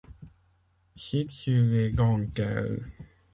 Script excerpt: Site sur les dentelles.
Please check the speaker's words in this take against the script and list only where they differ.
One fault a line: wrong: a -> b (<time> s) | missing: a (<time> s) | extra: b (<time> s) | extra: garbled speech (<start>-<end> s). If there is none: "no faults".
no faults